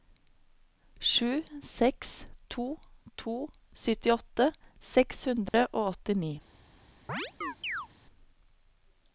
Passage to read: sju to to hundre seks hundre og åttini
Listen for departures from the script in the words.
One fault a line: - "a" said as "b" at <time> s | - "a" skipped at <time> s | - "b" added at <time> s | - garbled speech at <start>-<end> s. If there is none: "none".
- "seks" added at 1.7 s
- "hundre" said as "syttiåtte" at 3.8 s